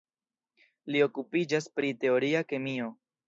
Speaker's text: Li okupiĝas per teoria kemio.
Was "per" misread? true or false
true